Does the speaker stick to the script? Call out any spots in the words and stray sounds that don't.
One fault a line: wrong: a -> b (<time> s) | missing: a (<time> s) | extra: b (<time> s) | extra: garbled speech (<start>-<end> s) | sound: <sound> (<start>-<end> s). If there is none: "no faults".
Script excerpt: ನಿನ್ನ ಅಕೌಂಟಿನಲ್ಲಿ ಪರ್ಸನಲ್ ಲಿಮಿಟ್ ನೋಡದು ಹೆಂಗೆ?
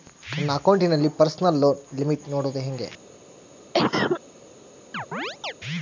wrong: ನಿನ್ನ -> ನನ್ನ (0.4 s)
extra: ಲೋನ್ (1.6 s)
sound: cough (3.7-4.2 s)
sound: chirp (4.9-5.5 s)